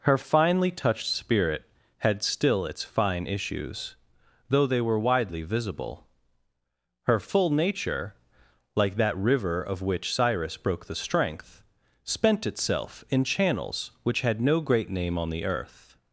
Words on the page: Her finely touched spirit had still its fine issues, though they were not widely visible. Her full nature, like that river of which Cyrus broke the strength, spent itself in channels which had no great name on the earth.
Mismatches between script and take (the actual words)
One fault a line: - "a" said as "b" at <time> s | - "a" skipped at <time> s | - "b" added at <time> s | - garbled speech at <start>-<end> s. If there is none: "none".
- "not" skipped at 5.0 s